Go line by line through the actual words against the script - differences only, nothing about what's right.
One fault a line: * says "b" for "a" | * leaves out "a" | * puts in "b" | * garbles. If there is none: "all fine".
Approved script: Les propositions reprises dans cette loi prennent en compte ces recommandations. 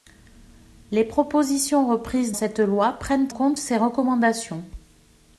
* leaves out "dans"
* leaves out "en"